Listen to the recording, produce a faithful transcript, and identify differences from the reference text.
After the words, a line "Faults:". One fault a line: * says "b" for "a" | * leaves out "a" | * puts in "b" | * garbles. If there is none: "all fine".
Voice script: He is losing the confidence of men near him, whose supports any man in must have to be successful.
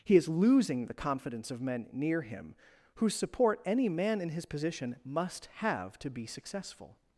He is losing the confidence of men near him, whose support any man in his position must have to be successful.
Faults:
* says "support" for "supports"
* puts in "his position"